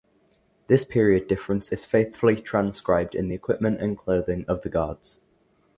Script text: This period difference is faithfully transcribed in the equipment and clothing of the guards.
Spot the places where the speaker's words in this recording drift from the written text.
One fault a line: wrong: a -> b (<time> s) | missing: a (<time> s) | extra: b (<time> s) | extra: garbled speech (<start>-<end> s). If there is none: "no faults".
no faults